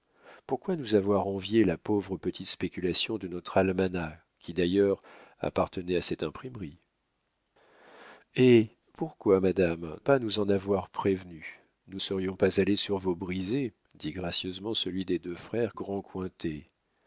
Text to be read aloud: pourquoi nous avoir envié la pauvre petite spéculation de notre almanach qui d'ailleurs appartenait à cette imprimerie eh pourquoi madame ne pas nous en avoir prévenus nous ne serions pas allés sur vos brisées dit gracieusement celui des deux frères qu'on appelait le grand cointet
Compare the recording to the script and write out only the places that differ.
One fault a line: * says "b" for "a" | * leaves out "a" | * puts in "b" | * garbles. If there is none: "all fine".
* leaves out "ne"
* leaves out "ne"
* leaves out "qu'on appelait le"